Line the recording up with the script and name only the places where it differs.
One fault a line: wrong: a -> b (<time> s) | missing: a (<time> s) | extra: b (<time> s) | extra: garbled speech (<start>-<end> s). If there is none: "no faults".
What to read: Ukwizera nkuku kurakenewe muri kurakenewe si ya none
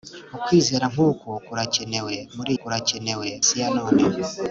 no faults